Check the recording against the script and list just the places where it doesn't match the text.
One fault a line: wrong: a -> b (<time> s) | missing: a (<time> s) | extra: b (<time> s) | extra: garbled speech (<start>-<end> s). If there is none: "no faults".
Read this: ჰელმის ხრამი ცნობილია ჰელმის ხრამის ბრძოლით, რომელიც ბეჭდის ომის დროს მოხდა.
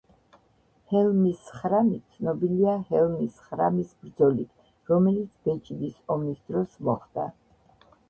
no faults